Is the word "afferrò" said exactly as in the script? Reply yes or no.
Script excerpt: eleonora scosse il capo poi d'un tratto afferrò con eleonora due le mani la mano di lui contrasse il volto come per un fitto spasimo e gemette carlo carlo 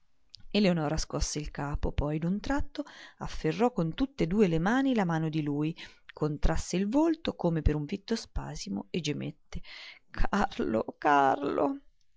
yes